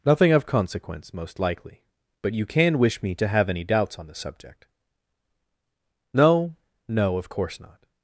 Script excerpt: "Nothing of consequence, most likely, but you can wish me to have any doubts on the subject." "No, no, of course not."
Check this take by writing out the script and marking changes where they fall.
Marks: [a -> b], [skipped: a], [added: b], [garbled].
"Nothing of consequence, most likely, but you can wish me to have any doubts on the subject." "No, no, of course not."